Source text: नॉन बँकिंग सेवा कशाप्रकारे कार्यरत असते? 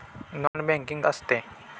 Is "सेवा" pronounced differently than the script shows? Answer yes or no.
yes